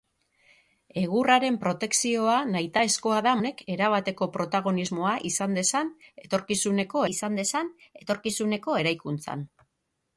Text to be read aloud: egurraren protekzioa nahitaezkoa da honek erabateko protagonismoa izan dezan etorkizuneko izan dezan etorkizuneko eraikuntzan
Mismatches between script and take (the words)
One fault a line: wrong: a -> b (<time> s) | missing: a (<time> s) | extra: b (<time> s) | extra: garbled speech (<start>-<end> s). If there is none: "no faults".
no faults